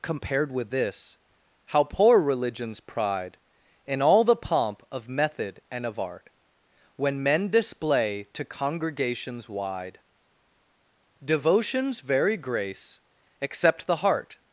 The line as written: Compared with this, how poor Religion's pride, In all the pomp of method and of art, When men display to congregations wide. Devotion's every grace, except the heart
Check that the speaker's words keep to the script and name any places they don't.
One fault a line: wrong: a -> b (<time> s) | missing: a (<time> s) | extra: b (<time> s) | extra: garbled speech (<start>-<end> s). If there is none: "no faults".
wrong: every -> very (12.0 s)